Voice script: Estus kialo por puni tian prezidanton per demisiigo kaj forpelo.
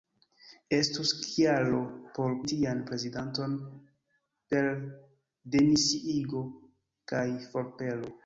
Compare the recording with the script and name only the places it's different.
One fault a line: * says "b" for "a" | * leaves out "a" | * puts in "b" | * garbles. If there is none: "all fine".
* leaves out "puni"